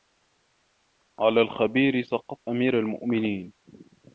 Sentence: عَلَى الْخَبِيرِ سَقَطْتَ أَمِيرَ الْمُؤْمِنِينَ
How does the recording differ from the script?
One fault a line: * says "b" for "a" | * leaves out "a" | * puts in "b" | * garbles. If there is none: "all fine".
all fine